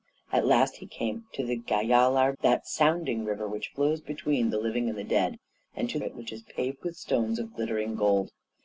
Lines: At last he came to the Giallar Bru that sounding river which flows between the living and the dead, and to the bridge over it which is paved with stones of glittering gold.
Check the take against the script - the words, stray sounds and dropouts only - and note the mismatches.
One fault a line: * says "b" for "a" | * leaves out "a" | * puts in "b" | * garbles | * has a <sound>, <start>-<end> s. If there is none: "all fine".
* leaves out "Bru"
* leaves out "the bridge over"